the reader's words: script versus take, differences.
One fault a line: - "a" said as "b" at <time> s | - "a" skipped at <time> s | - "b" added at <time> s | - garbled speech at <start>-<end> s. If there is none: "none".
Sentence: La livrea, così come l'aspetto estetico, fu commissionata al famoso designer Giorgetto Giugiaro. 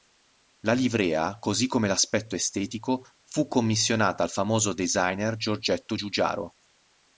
none